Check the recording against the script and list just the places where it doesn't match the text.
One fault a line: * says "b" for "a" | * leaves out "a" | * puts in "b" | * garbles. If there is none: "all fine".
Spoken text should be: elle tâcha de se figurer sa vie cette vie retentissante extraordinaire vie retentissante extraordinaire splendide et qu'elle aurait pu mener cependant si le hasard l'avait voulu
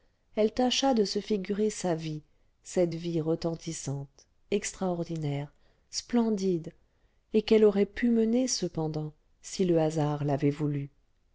* leaves out "vie retentissante extraordinaire"